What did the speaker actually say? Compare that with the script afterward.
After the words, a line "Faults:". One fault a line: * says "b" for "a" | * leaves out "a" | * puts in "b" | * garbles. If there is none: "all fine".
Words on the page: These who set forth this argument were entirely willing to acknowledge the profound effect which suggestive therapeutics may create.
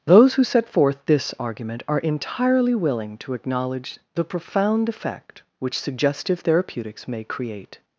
Those who set forth this argument are entirely willing to acknowledge the profound effect which suggestive therapeutics may create.
Faults:
* says "Those" for "These"
* says "are" for "were"